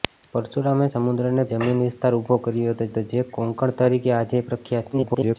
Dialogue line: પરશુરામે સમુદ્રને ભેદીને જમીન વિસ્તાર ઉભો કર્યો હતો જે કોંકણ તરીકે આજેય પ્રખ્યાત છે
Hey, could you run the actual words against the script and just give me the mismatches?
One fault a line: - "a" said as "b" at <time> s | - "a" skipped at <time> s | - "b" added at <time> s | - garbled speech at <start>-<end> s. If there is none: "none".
- "ભેદીને" skipped at 1.4 s
- "હતો" added at 2.9 s
- garbled speech at 4.9-5.4 s